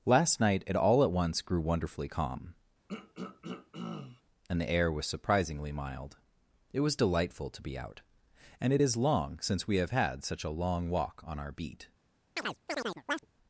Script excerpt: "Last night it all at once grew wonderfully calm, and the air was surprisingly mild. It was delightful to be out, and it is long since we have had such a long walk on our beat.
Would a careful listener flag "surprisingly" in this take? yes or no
no